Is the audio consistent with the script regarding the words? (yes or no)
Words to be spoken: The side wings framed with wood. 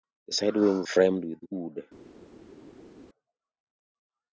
yes